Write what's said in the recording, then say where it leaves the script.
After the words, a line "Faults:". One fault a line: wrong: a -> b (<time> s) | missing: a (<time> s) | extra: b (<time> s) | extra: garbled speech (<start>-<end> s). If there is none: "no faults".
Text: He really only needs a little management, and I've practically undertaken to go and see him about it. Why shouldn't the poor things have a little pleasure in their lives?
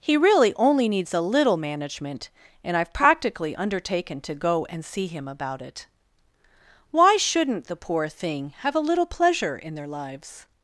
He really only needs a little management, and I've practically undertaken to go and see him about it. Why shouldn't the poor thing have a little pleasure in their lives?
Faults:
wrong: things -> thing (8.1 s)